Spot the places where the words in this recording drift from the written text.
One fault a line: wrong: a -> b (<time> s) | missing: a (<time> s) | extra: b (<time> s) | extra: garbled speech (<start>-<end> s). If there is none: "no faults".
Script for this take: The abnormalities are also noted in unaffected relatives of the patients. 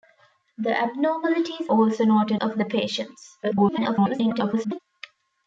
missing: are (1.7 s)
missing: in unaffected relatives (2.4 s)
extra: garbled speech (3.4-4.8 s)